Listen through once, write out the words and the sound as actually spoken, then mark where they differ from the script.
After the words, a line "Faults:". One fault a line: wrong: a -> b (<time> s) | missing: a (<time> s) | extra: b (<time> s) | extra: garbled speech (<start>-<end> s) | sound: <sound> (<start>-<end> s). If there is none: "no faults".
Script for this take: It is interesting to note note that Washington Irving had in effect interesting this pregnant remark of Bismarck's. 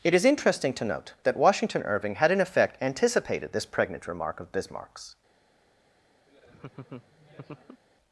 It is interesting to note that Washington Irving had in effect anticipated this pregnant remark of Bismarck's.
Faults:
missing: note (1.1 s)
wrong: interesting -> anticipated (2.8 s)
sound: laugh (6.3-7.8 s)